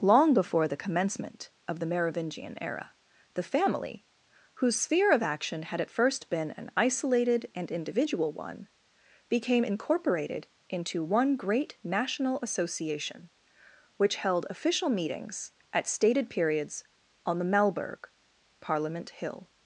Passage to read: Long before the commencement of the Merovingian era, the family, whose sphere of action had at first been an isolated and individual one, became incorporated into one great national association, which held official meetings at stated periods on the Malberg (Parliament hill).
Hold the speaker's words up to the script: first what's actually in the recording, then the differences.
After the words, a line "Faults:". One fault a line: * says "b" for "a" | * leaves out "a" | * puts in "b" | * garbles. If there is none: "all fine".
Long before the commencement of the Merovingian era, the family, whose sphere of action had at first been an isolated and individual one, became incorporated into one great national association, which held official meetings at stated periods on the Malberg (Parliament hill).
Faults:
all fine